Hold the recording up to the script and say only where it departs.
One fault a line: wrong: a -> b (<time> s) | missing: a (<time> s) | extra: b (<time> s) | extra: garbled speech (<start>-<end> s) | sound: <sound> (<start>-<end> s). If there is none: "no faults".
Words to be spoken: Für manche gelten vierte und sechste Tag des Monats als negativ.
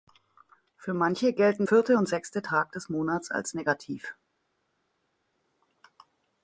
no faults